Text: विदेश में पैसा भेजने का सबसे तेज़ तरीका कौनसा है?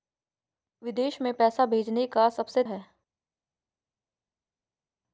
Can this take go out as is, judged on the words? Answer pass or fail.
fail